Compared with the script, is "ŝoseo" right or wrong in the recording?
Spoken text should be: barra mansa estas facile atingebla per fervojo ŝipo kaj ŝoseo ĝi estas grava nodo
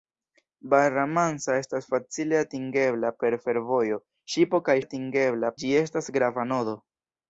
wrong